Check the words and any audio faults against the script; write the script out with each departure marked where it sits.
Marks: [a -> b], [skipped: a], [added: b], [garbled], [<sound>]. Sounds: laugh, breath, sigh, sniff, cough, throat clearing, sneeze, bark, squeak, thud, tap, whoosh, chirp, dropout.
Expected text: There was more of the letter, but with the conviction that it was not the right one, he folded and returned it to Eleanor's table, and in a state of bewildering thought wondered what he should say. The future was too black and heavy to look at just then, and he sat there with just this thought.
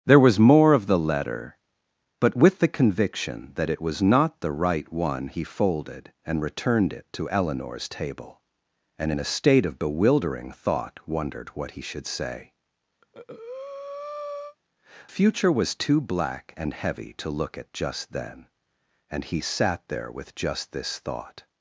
There was more of the letter, but with the conviction that it was not the right one, he folded and returned it to Eleanor's table, and in a state of bewildering thought wondered what he should say. [skipped: The] [breath] future was too black and heavy to look at just then, and he sat there with just this thought.